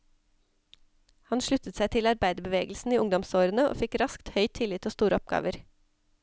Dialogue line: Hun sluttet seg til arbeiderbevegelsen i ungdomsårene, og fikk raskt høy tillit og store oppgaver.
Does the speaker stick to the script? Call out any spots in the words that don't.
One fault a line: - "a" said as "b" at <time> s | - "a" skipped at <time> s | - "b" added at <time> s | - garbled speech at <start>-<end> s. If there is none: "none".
- "Hun" said as "Han" at 1.3 s